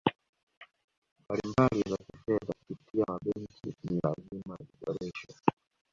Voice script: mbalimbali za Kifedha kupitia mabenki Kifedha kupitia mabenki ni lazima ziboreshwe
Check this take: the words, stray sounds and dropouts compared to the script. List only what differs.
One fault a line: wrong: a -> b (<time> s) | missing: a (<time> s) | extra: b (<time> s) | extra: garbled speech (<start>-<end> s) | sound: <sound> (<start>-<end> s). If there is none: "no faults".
missing: Kifedha kupitia mabenki (3.7 s)